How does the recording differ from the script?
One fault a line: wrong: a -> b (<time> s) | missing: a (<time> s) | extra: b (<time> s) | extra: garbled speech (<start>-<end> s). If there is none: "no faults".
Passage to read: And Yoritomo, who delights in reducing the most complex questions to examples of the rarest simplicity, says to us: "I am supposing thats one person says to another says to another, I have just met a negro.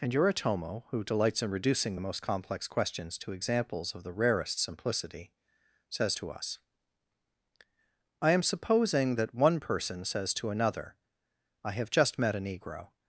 wrong: thats -> that (9.1 s)
missing: says to another (11.0 s)